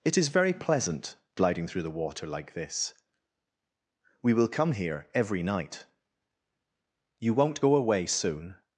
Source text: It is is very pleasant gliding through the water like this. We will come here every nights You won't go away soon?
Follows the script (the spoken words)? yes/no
no